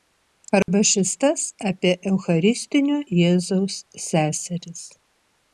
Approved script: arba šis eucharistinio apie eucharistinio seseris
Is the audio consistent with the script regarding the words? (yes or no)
no